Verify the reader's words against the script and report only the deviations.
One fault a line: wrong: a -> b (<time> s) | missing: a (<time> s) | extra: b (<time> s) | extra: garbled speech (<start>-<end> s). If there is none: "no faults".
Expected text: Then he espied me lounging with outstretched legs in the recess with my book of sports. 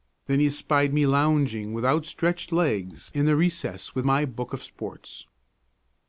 no faults